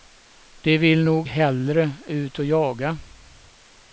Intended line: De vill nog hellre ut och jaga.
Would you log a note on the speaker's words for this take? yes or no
no